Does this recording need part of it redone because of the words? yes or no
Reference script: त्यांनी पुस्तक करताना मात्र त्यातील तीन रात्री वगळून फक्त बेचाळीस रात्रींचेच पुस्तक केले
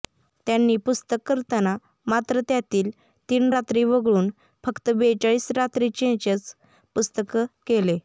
no